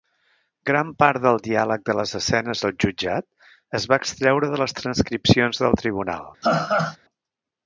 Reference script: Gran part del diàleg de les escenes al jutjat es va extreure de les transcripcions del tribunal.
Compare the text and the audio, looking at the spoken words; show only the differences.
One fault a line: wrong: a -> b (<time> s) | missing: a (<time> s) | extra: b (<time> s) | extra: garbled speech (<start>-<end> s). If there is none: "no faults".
no faults